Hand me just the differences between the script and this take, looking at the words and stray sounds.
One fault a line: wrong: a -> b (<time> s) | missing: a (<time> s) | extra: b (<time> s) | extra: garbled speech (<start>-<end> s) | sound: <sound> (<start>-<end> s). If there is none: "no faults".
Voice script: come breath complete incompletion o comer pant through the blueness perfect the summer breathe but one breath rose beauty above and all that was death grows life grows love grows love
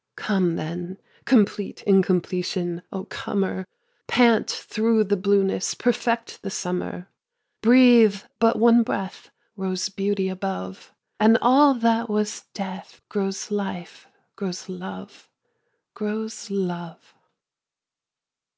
wrong: breath -> then (0.6 s)